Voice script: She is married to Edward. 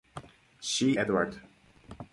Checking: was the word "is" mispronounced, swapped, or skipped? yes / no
yes